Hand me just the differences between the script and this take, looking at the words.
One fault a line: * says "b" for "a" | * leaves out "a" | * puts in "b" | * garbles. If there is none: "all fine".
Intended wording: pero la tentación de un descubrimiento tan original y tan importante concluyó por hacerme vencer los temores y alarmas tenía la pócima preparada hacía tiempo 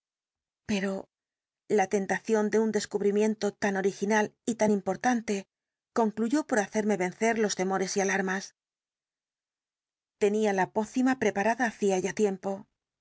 * puts in "ya"